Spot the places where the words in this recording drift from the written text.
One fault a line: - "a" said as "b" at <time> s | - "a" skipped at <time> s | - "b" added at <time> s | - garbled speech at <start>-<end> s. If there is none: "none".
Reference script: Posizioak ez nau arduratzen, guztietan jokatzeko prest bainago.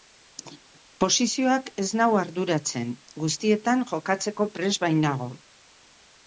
none